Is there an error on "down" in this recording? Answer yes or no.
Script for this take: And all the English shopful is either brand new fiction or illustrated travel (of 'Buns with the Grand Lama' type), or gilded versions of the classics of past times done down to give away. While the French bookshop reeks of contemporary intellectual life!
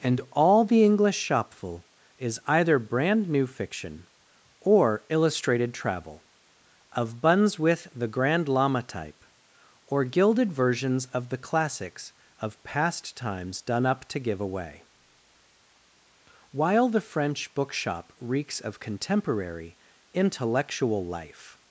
yes